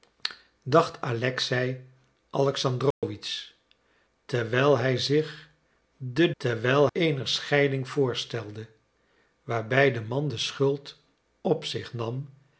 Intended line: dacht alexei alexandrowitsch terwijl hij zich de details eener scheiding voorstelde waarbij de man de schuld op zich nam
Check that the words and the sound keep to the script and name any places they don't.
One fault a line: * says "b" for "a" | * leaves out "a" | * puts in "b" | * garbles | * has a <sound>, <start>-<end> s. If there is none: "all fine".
* has a dropout, 2.9-3.0 s
* says "terwijl" for "details"